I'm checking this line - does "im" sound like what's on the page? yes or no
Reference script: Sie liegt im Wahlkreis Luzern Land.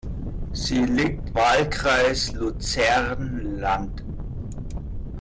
no